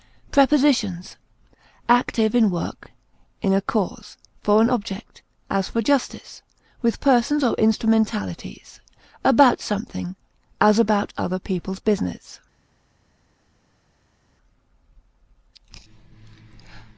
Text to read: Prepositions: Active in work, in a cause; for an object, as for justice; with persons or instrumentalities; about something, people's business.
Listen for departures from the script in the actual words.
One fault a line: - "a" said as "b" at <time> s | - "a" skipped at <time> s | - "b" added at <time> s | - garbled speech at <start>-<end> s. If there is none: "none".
- "as about other" added at 10.6 s